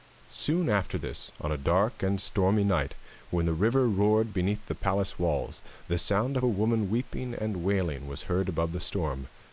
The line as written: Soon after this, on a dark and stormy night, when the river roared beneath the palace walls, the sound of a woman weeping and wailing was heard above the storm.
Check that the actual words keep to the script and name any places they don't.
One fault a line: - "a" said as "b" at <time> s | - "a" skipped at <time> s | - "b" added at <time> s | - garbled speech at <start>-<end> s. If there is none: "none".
none